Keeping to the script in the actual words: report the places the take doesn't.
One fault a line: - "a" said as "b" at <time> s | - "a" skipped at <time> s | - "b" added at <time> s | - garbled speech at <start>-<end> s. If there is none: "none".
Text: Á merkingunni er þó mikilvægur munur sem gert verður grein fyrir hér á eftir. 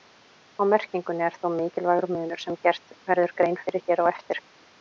none